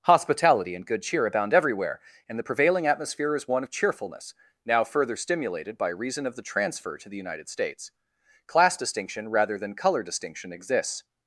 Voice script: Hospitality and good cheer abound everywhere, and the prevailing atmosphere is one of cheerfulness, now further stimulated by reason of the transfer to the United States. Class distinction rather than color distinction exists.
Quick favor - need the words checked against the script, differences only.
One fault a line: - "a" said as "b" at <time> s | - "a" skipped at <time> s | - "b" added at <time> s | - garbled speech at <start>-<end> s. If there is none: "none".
none